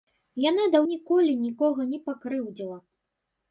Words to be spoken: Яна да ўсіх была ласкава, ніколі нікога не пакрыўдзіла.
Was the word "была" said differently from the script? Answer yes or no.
yes